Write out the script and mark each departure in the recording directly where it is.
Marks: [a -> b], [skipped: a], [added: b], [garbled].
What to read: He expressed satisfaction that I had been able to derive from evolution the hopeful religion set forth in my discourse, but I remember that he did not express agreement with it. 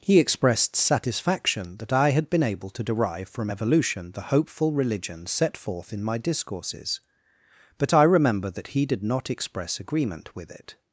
He expressed satisfaction that I had been able to derive from evolution the hopeful religion set forth in my [discourse, -> discourses] but I remember that he did not express agreement with it.